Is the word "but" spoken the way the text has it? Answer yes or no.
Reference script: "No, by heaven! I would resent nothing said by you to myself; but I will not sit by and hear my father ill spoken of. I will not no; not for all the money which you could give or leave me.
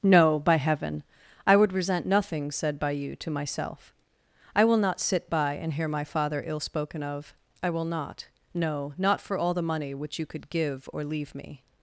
no